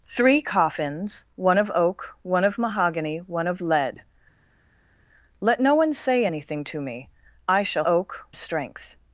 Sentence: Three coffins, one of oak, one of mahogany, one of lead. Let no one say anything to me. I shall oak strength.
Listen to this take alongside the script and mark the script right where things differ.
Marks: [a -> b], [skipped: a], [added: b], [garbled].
Three coffins, one of oak, one of mahogany, one of lead. Let no one say anything to me. I shall oak strength.